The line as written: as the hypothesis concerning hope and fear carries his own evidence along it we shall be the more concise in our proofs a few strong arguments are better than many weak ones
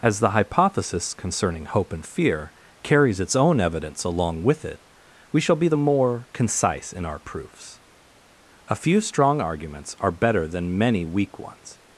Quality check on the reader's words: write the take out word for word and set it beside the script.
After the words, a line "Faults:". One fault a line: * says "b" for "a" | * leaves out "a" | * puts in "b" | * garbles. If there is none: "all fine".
as the hypothesis concerning hope and fear carries its own evidence along with it we shall be the more concise in our proofs a few strong arguments are better than many weak ones
Faults:
* says "its" for "his"
* puts in "with"